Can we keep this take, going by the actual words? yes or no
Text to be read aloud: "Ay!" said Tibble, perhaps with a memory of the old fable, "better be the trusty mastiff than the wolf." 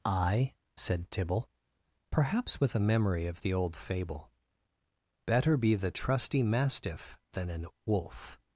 no